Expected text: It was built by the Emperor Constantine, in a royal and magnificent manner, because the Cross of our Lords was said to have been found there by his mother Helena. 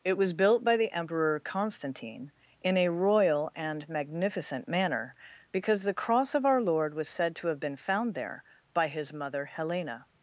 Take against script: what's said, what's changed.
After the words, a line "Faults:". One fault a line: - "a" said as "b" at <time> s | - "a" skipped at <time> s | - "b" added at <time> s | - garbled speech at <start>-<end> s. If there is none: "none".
It was built by the Emperor Constantine, in a royal and magnificent manner, because the Cross of our Lord was said to have been found there by his mother Helena.
Faults:
- "Lords" said as "Lord" at 6.6 s